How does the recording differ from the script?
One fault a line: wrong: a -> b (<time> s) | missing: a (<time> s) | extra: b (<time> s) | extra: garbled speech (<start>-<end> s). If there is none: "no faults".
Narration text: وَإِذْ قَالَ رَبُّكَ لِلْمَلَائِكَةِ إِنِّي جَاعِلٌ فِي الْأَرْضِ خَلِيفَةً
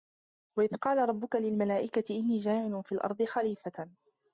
no faults